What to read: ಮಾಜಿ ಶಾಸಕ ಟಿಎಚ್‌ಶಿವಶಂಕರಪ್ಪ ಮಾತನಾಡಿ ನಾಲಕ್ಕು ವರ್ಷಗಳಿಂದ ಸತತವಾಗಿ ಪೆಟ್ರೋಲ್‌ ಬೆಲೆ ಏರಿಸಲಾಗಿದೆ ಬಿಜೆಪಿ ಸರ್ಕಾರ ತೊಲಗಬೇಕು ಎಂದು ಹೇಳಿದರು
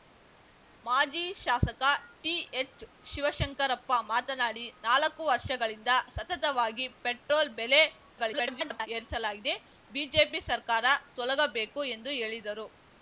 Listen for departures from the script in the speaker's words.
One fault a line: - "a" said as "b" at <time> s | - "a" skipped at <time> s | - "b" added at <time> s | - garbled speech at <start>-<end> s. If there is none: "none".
- garbled speech at 8.1-8.9 s